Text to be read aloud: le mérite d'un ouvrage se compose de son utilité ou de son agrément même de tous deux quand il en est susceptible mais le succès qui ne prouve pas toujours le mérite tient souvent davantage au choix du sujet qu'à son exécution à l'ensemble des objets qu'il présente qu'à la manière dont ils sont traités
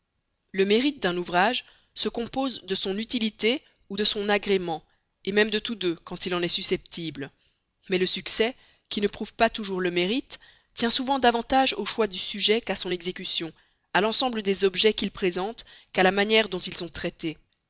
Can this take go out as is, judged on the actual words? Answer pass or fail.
pass